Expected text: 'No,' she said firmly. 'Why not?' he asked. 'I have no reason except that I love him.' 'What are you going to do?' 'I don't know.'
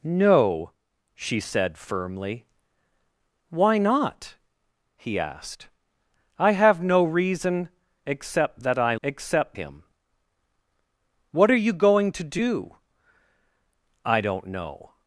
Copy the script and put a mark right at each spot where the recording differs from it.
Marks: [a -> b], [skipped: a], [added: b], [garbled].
'No,' she said firmly. 'Why not?' he asked. 'I have no reason except that I [love -> except] him.' 'What are you going to do?' 'I don't know.'